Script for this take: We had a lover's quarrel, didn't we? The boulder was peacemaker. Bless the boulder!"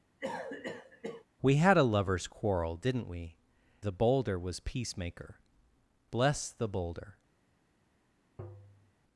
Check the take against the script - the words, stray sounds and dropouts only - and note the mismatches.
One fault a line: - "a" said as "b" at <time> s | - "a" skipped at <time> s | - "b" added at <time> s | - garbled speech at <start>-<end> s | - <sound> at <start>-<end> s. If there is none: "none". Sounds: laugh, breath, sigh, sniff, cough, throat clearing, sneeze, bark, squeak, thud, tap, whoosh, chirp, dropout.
- cough at 0.2-1.3 s
- tap at 8.4-8.9 s